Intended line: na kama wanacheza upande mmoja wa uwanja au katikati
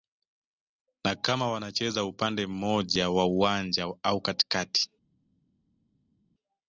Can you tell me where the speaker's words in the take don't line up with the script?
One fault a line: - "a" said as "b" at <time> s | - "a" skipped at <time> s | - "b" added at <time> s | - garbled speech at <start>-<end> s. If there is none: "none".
none